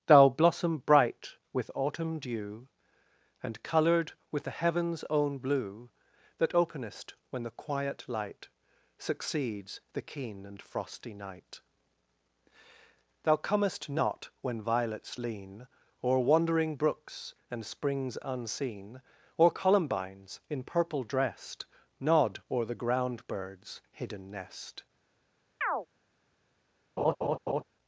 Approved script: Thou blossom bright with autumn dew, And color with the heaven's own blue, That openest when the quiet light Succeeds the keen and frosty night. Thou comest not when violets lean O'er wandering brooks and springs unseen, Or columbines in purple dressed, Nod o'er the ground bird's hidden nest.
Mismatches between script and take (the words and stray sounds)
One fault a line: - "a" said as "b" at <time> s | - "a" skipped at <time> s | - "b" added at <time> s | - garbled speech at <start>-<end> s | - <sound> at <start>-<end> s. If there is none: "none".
- "color" said as "colored" at 3.6 s
- chirp at 25.6-25.9 s
- laugh at 27.0-27.6 s